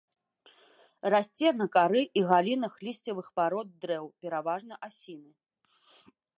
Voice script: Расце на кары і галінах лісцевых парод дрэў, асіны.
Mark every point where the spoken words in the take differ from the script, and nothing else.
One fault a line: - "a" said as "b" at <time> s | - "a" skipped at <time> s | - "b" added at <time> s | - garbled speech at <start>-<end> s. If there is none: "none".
- "пераважна" added at 4.2 s